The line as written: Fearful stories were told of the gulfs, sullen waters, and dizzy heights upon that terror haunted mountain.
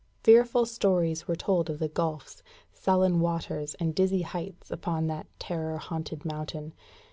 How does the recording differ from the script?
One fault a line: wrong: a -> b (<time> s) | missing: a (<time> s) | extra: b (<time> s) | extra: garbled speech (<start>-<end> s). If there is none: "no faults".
no faults